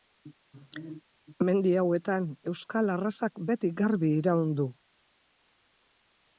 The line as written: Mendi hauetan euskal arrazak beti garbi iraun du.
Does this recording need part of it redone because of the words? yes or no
no